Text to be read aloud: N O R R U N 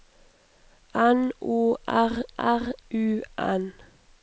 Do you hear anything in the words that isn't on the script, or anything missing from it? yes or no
no